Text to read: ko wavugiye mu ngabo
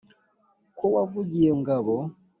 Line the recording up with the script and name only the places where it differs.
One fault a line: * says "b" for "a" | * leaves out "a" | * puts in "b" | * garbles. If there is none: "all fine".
* leaves out "mu"